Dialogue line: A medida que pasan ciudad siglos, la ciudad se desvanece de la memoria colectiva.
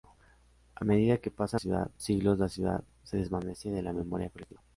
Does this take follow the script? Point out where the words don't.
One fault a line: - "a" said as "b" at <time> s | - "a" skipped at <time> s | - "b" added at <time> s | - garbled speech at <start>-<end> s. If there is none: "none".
none